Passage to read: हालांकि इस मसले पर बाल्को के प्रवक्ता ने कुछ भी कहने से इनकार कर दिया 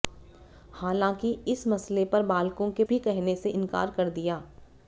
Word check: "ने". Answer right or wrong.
wrong